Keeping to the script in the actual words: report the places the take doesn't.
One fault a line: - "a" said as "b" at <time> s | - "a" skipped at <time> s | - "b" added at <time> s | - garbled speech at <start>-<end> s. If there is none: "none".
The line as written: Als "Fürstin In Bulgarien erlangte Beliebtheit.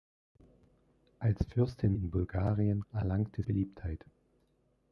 none